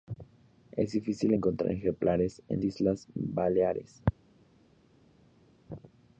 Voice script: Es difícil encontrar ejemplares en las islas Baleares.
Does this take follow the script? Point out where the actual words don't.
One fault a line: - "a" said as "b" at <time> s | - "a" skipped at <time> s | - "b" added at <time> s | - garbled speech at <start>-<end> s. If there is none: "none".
- "las" skipped at 2.6 s